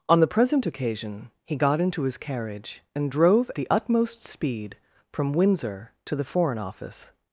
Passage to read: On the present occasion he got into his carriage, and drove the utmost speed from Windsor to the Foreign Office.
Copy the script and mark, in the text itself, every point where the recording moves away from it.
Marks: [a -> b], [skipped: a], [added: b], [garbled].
On the present occasion he got into his carriage, and drove the utmost speed from Windsor to the Foreign Office.